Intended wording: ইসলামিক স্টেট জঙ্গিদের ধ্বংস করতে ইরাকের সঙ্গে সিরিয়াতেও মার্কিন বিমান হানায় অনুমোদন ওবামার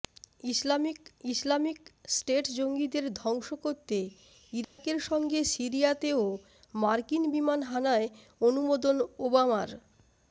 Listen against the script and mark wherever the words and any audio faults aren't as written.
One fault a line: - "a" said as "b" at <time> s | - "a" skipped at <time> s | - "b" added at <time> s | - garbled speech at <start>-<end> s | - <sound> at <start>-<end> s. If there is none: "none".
- "ইসলামিক" added at 1.3 s
- dropout at 4.6-4.8 s